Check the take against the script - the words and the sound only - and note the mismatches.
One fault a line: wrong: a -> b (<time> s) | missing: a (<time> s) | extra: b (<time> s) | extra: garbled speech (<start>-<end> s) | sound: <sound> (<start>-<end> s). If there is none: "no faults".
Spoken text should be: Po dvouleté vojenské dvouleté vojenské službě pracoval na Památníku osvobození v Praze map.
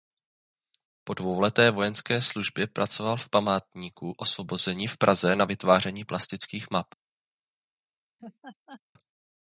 missing: dvouleté vojenské (2.2 s)
wrong: na -> v (3.2 s)
extra: na vytváření plastických (5.3 s)
sound: laugh (8.2-8.8 s)